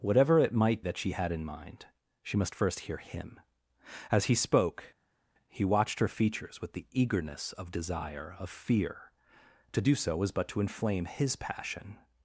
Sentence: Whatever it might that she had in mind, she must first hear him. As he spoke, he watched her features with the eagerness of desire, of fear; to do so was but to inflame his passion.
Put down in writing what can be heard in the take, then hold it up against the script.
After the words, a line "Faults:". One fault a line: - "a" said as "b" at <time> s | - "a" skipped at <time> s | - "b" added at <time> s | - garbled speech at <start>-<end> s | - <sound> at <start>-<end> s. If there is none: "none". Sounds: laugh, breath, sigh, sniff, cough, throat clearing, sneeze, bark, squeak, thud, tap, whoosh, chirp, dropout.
Whatever it might that she had in mind, she must first hear him. As he spoke, he watched her features with the eagerness of desire, of fear; to do so was but to inflame his passion.
Faults:
none